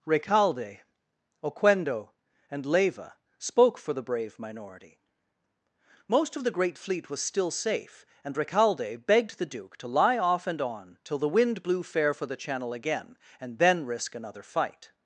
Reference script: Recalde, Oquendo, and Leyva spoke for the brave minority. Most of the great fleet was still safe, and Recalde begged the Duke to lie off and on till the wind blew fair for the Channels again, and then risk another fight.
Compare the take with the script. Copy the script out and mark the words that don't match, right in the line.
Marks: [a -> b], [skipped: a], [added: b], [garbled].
Recalde, Oquendo, and Leyva spoke for the brave minority. Most of the great fleet was still safe, and Recalde begged the Duke to lie off and on till the wind blew fair for the [Channels -> Channel] again, and then risk another fight.